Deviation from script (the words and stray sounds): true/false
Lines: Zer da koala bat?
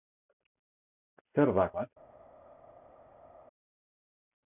true